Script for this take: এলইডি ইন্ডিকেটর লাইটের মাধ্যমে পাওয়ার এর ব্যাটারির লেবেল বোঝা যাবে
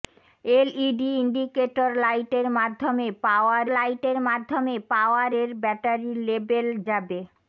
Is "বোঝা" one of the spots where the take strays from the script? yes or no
yes